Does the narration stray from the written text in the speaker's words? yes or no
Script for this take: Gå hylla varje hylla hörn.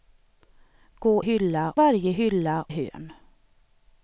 no